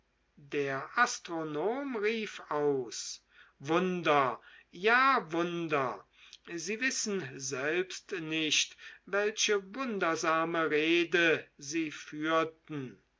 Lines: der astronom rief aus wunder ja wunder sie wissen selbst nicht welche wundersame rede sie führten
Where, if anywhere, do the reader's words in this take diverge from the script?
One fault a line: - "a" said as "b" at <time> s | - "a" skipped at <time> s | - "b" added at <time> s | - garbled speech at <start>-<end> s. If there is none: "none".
none